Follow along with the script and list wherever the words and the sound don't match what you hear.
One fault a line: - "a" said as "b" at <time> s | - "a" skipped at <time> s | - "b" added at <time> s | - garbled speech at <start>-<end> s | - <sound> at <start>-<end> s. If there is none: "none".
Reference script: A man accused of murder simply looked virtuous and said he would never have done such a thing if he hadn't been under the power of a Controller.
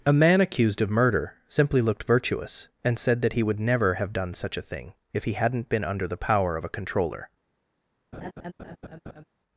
- "that" added at 3.2 s
- laugh at 8.1-9.2 s